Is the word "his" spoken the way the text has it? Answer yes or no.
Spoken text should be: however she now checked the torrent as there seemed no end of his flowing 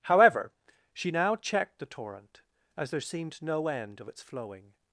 no